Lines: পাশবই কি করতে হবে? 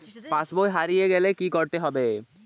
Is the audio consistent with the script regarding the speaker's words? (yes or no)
no